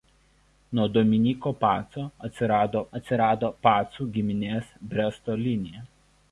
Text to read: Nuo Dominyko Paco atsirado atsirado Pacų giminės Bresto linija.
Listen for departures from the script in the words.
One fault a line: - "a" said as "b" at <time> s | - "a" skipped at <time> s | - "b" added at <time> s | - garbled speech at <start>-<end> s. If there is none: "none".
none